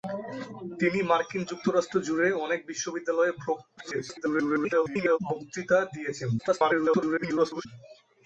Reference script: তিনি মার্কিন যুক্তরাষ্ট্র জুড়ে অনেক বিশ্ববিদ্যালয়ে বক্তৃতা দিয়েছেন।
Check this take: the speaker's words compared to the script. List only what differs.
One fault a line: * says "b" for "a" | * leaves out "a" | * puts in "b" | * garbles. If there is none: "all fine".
* garbles
* garbles